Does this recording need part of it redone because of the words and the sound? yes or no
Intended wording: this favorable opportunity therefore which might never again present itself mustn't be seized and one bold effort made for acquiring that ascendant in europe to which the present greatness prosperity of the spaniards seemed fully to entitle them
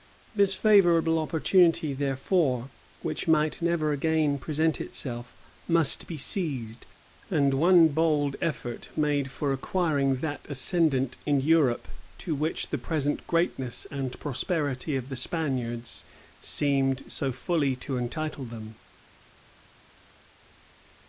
yes